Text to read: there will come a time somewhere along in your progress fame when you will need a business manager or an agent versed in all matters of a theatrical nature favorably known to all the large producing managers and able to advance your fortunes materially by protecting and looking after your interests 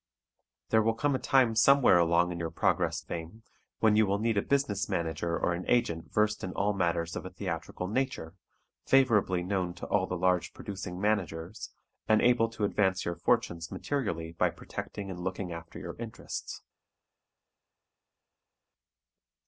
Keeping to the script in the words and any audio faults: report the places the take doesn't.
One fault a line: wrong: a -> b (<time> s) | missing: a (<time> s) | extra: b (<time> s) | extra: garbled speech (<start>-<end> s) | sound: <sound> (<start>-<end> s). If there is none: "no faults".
no faults